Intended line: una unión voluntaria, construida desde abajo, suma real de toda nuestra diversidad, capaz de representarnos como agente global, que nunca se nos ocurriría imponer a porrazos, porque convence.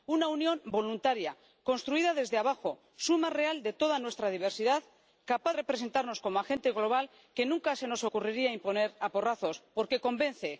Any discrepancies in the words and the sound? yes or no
yes